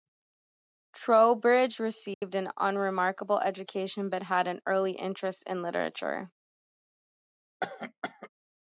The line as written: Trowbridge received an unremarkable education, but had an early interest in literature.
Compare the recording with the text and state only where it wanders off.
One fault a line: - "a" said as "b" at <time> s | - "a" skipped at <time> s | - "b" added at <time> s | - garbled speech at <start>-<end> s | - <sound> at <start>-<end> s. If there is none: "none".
- dropout at 2.1-2.2 s
- cough at 7.6-8.3 s